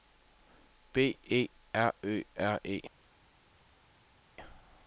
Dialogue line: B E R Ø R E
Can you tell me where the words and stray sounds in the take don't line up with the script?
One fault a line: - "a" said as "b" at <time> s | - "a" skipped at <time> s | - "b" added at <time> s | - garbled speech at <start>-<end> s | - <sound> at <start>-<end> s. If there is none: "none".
none